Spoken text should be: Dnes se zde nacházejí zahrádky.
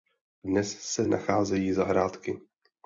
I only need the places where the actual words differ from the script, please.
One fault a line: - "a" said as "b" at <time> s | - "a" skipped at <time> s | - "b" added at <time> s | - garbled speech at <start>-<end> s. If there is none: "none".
- "zde" skipped at 1.1 s